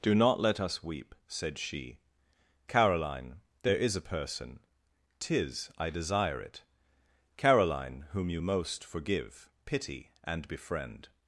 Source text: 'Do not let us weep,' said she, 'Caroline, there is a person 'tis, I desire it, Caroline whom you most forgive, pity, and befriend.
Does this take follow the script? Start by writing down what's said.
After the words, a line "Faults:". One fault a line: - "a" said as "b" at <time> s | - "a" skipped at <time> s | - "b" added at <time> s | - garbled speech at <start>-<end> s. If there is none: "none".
'Do not let us weep,' said she, 'Caroline, there is a person 'tis, I desire it, Caroline whom you most forgive, pity, and befriend.
Faults:
none